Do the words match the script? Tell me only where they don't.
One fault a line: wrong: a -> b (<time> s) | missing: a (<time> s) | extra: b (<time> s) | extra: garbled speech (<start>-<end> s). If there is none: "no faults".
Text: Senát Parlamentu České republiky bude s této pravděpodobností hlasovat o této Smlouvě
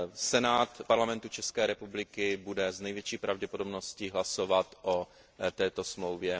wrong: této -> největší (2.8 s)